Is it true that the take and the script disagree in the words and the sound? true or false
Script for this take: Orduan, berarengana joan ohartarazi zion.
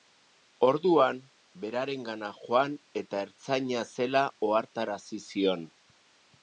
true